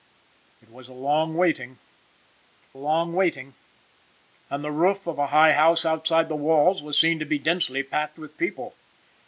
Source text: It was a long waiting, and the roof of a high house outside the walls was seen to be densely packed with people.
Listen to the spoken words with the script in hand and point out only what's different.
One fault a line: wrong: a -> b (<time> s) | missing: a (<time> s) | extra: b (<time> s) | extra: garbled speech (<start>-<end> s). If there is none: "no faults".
extra: long waiting (2.7 s)